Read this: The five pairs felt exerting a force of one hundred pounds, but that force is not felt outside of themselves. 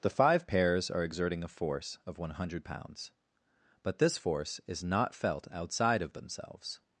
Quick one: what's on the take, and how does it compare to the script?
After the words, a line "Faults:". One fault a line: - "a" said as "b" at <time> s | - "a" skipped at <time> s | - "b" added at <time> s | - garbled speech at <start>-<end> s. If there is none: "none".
The five pairs are exerting a force of one hundred pounds, but this force is not felt outside of themselves.
Faults:
- "felt" said as "are" at 0.9 s
- "that" said as "this" at 4.0 s